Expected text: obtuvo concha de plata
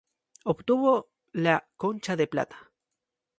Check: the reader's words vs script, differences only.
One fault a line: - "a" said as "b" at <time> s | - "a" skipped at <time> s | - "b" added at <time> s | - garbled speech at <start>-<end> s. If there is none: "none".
- "la" added at 1.3 s